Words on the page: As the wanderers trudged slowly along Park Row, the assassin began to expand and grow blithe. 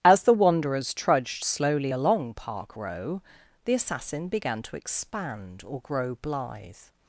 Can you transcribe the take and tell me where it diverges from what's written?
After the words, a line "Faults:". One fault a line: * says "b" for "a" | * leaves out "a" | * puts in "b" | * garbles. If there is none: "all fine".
As the wanderers trudged slowly along Park Row, the assassin began to expand or grow blithe.
Faults:
* says "or" for "and"